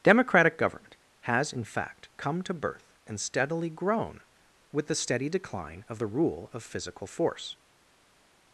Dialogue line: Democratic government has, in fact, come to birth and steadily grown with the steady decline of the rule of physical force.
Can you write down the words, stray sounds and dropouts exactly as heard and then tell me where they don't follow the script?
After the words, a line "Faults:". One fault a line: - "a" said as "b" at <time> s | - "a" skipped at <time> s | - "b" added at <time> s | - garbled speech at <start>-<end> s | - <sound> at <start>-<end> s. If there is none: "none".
Democratic government has, in fact, come to birth and steadily grown with the steady decline of the rule of physical force.
Faults:
none